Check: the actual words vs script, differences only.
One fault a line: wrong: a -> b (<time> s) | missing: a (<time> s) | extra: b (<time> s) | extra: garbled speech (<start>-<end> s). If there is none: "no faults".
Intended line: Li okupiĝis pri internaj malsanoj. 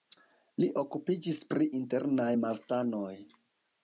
no faults